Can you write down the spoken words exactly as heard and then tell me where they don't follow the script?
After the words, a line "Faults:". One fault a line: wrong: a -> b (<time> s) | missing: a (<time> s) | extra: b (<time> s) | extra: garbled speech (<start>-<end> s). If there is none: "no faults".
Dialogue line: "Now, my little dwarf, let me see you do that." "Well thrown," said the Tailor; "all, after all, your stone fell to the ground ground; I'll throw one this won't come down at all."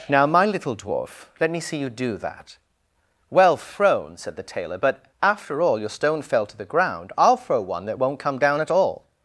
"Now, my little dwarf, let me see you do that." "Well thrown," said the Tailor; "but, after all, your stone fell to the ground; I'll throw one that won't come down at all."
Faults:
wrong: all -> but (4.8 s)
missing: ground (7.1 s)
wrong: this -> that (7.8 s)